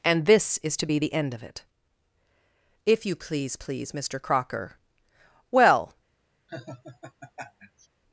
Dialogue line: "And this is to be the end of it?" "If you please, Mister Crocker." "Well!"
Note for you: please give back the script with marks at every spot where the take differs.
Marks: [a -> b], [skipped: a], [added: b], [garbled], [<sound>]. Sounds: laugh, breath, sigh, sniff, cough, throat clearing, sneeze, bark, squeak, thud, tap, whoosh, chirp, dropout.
"And this is to be the end of it?" "If you please, [added: please] Mister Crocker." "Well!" [laugh]